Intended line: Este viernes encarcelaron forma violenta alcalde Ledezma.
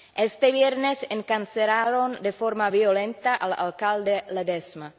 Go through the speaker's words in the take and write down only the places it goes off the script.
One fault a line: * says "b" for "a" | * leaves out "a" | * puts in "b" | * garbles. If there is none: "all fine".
* puts in "de"
* puts in "al"